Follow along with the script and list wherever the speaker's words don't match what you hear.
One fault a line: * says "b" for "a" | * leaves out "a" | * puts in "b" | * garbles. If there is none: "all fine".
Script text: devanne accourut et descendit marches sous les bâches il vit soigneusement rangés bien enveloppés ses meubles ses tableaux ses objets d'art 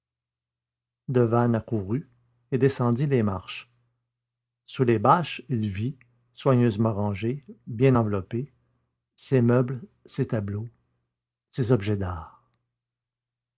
* puts in "les"